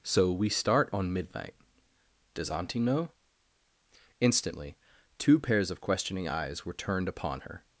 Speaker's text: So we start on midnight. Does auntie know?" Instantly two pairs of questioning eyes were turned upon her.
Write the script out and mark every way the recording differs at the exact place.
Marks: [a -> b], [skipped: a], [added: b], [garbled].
So we start on midnight. Does auntie know?" Instantly two pairs of questioning eyes were turned upon her.